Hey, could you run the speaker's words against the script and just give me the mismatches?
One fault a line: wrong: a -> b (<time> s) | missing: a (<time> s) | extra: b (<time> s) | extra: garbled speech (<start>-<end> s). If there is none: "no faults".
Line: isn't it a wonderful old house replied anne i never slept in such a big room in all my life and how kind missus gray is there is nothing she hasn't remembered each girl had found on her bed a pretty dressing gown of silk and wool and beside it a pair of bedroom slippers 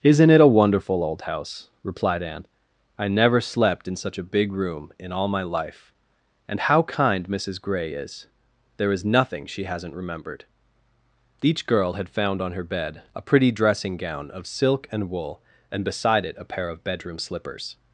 no faults